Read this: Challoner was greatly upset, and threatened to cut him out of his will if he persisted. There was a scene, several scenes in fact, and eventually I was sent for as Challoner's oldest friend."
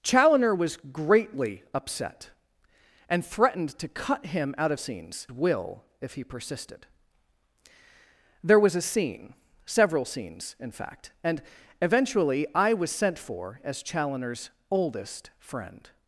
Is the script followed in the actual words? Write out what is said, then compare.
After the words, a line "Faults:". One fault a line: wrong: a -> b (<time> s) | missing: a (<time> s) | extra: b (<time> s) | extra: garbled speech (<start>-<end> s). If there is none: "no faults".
Challoner was greatly upset, and threatened to cut him out of scenes will if he persisted. There was a scene, several scenes in fact, and eventually I was sent for as Challoner's oldest friend."
Faults:
wrong: his -> scenes (4.8 s)